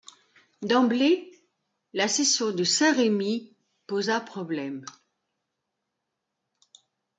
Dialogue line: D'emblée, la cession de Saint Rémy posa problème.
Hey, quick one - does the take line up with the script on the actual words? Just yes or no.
yes